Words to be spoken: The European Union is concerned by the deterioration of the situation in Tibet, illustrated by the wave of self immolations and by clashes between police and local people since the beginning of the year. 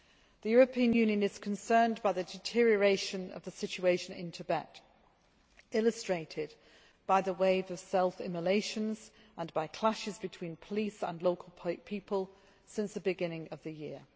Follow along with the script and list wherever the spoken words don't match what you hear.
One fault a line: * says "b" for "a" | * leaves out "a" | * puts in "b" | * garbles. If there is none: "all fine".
all fine